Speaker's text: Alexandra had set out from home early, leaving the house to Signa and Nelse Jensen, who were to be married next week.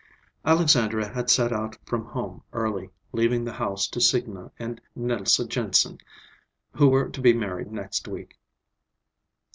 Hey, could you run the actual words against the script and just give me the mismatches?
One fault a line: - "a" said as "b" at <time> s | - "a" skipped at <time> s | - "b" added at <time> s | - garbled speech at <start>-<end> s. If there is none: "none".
none